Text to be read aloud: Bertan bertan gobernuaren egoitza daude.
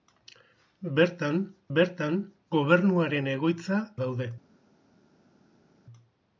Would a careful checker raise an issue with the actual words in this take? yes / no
no